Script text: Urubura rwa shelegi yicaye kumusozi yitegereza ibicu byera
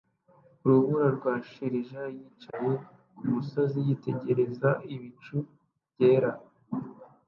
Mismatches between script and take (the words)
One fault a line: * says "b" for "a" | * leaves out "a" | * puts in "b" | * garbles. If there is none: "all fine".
all fine